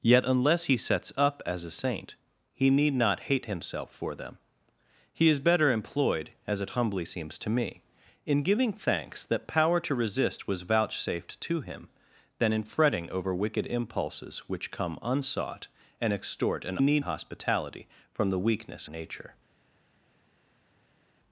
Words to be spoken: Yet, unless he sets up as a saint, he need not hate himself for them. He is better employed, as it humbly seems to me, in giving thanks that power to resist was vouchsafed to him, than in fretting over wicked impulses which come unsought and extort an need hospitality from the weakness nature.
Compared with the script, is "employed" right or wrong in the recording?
right